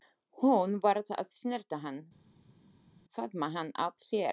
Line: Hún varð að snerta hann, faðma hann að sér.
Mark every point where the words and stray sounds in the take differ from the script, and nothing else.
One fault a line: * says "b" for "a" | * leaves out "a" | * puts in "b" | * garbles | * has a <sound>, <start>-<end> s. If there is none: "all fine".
all fine